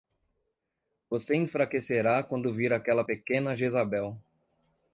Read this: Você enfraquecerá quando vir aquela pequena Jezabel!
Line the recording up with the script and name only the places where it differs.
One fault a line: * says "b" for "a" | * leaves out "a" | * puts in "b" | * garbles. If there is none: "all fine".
all fine